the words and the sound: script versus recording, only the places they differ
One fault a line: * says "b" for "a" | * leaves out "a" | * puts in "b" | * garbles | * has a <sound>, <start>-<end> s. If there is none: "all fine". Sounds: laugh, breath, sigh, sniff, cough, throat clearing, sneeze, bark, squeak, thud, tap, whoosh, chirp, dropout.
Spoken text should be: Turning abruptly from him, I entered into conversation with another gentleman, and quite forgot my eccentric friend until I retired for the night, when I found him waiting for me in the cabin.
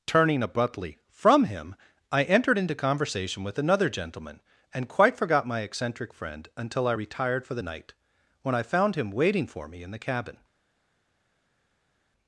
all fine